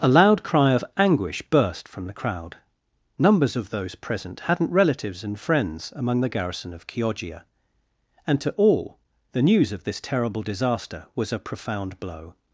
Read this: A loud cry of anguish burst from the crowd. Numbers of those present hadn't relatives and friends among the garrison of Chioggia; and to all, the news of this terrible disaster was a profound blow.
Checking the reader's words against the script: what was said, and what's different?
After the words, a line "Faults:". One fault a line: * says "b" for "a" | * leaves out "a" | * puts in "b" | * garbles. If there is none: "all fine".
A loud cry of anguish burst from the crowd. Numbers of those present hadn't relatives and friends among the garrison of Chioggia; and to all, the news of this terrible disaster was a profound blow.
Faults:
all fine